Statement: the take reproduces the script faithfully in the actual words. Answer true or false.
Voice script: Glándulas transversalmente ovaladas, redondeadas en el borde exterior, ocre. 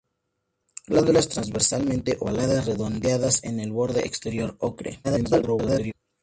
false